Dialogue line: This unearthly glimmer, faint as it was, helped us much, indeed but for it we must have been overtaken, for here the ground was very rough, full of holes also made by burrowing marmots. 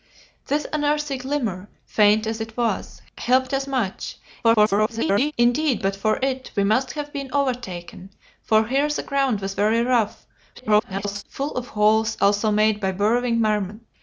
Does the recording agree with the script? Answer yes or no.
no